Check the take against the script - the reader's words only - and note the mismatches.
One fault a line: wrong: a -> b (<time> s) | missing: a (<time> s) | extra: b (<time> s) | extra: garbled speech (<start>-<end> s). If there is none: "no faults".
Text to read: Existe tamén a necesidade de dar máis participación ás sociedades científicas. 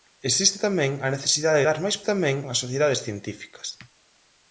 missing: de (1.6 s)
wrong: participación -> tamén (2.1 s)